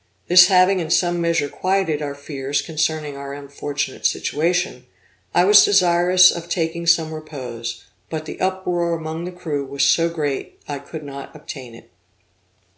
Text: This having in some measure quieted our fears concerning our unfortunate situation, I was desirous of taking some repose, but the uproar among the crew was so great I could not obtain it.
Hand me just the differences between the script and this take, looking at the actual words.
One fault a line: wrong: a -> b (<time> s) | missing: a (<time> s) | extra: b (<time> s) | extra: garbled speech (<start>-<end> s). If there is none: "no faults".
no faults